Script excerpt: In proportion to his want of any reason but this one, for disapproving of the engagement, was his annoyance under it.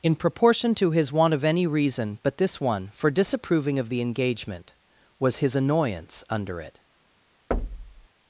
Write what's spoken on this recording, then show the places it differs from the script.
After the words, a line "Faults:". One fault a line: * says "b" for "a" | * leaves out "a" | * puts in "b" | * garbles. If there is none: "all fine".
In proportion to his want of any reason but this one, for disapproving of the engagement, was his annoyance under it.
Faults:
all fine